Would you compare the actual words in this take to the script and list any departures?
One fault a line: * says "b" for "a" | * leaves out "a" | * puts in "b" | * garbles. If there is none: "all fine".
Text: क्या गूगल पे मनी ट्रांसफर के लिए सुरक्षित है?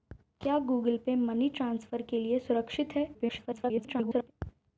* garbles